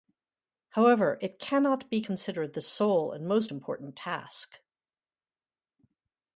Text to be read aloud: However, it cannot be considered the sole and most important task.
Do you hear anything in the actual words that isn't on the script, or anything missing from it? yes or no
no